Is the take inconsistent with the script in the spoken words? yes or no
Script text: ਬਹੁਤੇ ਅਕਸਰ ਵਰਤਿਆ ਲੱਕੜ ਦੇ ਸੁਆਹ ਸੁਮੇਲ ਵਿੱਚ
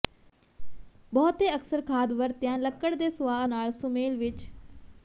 yes